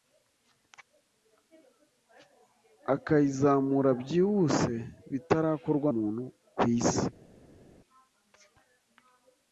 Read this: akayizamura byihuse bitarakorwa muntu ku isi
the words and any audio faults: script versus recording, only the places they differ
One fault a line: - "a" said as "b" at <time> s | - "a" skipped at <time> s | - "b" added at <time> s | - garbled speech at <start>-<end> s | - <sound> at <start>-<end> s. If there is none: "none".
none